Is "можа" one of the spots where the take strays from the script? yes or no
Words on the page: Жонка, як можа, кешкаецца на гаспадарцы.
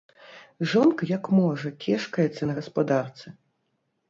no